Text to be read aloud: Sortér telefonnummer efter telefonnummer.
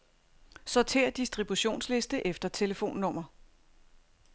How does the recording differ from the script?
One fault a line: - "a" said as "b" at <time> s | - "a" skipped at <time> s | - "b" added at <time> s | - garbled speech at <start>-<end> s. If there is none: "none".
- "telefonnummer" said as "distributionsliste" at 1.1 s